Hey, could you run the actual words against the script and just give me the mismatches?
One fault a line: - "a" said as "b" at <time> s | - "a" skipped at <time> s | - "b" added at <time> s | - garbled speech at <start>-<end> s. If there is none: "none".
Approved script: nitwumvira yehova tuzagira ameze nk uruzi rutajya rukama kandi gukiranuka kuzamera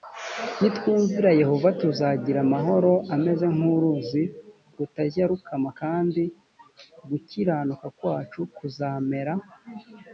- "amahoro" added at 2.5 s
- "kwacu" added at 8.0 s